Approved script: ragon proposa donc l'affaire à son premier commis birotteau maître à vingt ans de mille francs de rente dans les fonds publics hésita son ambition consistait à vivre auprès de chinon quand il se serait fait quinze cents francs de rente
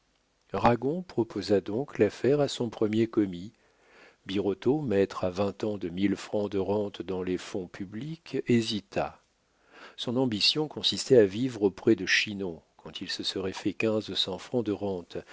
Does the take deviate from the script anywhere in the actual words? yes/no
no